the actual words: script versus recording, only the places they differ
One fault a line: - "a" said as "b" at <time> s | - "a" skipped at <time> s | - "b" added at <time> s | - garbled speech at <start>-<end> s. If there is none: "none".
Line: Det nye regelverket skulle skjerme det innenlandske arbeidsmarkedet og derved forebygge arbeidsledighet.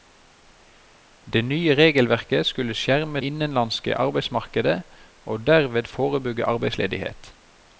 - "det" skipped at 3.2 s